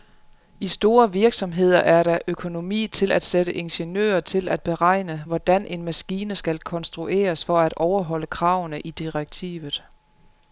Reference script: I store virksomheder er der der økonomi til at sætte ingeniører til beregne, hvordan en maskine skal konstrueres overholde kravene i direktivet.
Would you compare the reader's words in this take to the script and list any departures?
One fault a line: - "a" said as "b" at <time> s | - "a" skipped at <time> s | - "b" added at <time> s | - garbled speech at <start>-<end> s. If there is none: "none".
- "der" skipped at 2.2 s
- "at" added at 4.5 s
- "for at" added at 7.4 s